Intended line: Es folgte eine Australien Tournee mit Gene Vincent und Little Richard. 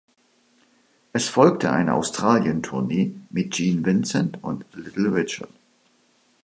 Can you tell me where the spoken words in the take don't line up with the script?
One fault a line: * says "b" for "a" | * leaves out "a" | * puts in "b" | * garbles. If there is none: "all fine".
all fine